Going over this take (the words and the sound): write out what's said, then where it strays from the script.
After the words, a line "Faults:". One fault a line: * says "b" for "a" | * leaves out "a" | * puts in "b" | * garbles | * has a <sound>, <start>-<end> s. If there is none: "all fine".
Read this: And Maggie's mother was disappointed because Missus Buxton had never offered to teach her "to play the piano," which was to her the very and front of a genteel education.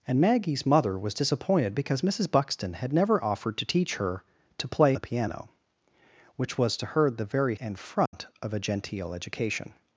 And Maggie's mother was disappointed because Missus Buxton had never offered to teach her "to play the piano," which was to her the very and front of a genteel education.
Faults:
* has a dropout, 8.1-8.1 s